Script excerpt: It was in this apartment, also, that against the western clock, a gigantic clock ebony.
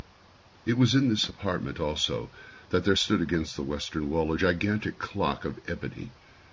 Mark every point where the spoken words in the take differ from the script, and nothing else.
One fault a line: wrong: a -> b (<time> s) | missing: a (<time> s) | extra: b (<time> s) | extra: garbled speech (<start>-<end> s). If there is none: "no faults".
extra: there stood (2.9 s)
wrong: clock -> wall (4.1 s)
extra: of (5.4 s)